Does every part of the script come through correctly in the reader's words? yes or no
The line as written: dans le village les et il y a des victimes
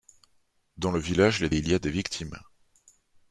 yes